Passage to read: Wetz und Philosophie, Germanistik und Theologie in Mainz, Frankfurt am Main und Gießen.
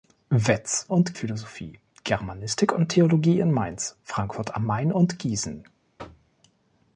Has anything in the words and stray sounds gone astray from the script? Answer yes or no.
yes